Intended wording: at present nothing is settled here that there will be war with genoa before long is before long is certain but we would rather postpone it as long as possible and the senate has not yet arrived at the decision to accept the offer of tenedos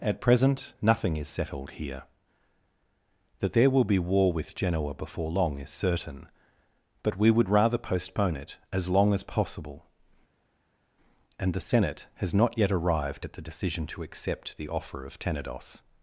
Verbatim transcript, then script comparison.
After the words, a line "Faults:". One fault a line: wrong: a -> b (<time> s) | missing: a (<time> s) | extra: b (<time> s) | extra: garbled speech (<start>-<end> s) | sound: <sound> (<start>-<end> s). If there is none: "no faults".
at present nothing is settled here that there will be war with genoa before long is certain but we would rather postpone it as long as possible and the senate has not yet arrived at the decision to accept the offer of tenedos
Faults:
missing: before long is (5.7 s)